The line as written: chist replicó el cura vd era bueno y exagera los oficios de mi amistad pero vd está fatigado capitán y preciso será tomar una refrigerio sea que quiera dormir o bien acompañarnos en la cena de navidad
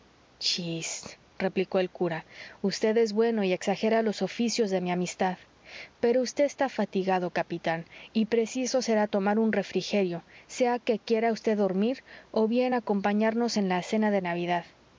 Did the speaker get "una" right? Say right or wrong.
wrong